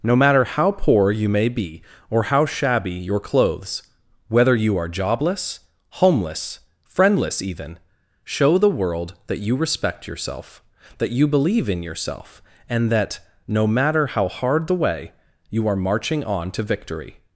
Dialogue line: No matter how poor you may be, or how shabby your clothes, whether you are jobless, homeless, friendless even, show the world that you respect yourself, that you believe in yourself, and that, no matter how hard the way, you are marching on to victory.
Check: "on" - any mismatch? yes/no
no